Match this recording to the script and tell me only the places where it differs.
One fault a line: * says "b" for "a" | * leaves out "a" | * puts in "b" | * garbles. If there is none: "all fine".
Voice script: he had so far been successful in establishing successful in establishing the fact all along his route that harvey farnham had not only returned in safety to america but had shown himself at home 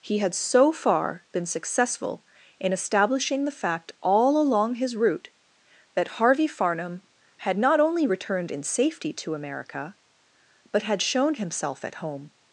* leaves out "successful in establishing"